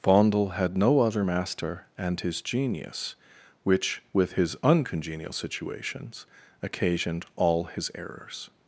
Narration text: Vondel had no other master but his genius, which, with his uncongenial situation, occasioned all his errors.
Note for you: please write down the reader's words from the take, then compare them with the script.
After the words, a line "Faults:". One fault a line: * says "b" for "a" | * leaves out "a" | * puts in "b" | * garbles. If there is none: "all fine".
Vondel had no other master and his genius, which, with his uncongenial situations, occasioned all his errors.
Faults:
* says "and" for "but"
* says "situations" for "situation"